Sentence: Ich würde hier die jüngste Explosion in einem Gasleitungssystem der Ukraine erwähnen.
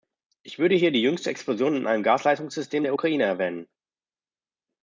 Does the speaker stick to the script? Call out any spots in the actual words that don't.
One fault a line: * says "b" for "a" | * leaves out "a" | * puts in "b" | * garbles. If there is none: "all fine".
all fine